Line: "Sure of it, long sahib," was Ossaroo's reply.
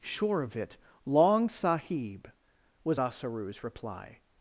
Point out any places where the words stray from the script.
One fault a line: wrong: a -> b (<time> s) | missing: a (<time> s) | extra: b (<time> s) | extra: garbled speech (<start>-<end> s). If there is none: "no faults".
no faults